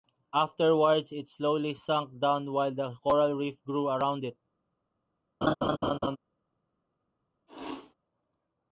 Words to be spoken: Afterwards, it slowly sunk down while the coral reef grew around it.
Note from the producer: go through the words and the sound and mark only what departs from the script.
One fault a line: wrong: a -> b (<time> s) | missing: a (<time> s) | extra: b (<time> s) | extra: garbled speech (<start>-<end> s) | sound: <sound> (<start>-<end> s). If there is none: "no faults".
sound: laugh (5.4-6.2 s)
sound: sneeze (7.5-7.9 s)